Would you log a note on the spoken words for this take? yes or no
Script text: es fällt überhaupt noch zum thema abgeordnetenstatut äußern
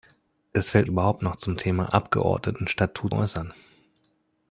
no